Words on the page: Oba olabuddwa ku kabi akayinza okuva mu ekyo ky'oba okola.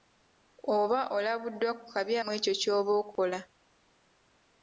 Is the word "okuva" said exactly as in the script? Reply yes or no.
no